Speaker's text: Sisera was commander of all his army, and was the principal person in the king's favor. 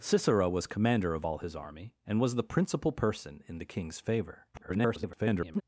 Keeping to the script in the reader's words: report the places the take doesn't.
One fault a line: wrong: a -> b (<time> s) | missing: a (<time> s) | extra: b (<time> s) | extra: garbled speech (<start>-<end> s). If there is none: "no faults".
extra: garbled speech (4.5-5.6 s)